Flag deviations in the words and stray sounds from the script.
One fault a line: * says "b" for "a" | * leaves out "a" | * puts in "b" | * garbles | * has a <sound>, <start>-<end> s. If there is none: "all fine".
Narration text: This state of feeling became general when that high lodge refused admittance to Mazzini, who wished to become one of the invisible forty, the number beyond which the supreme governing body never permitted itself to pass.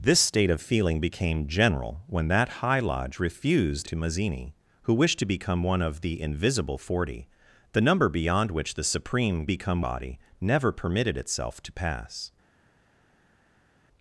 * leaves out "admittance"
* says "become" for "governing"